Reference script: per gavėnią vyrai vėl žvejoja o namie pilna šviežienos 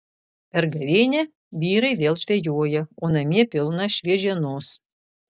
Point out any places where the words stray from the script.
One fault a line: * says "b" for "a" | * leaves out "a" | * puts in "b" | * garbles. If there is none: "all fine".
all fine